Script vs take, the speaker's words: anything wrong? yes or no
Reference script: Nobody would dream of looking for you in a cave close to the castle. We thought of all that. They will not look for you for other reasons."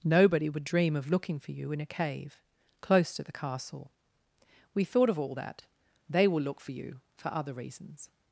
yes